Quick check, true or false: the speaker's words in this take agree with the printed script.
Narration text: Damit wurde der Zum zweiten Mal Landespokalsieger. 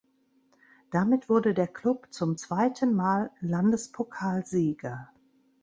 false